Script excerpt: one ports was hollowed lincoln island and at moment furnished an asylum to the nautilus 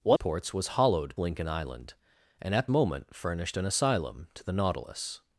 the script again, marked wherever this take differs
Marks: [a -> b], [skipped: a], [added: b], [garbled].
one ports was hollowed lincoln island and at moment furnished an asylum to the nautilus